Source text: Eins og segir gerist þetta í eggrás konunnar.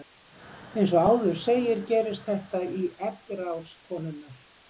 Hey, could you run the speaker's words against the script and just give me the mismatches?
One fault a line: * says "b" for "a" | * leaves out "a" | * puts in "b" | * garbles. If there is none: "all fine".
* puts in "áður"